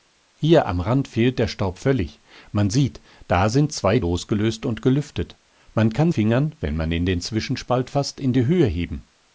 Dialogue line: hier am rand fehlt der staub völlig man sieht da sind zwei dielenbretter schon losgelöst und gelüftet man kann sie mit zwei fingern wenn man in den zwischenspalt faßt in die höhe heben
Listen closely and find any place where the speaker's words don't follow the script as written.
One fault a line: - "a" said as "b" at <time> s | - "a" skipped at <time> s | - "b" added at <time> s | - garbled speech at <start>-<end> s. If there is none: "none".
- "dielenbretter schon" skipped at 4.0 s
- "sie mit zwei" skipped at 6.1 s